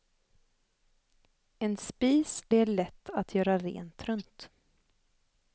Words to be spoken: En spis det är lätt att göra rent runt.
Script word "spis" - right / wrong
right